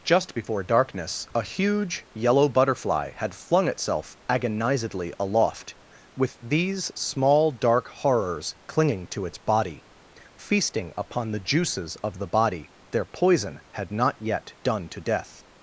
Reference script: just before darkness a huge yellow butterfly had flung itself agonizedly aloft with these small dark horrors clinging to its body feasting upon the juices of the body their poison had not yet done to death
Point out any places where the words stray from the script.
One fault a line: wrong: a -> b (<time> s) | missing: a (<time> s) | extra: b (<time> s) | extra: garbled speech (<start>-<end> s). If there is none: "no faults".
no faults